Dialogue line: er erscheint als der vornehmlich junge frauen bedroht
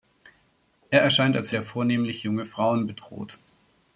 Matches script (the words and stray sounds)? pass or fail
pass